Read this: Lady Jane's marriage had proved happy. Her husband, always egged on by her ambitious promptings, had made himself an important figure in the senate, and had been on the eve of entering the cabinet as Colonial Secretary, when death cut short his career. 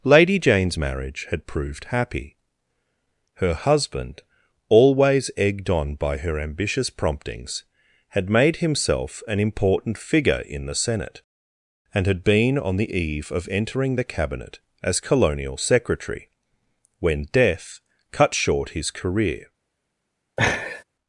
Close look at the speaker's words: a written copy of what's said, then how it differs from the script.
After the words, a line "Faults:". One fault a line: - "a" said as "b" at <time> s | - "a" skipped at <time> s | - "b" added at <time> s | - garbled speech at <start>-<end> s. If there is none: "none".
Lady Jane's marriage had proved happy. Her husband, always egged on by her ambitious promptings, had made himself an important figure in the senate, and had been on the eve of entering the cabinet as Colonial Secretary, when death cut short his career.
Faults:
none